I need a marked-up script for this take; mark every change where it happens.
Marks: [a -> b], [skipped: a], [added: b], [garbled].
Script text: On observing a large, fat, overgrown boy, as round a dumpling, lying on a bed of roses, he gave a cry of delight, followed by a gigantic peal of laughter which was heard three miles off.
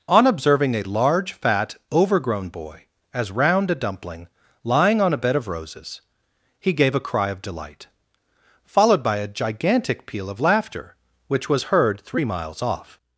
On observing a large, fat, overgrown boy, as round a dumpling, lying on a bed of roses, he gave a cry of delight, followed by a gigantic peal of laughter which was heard three miles off.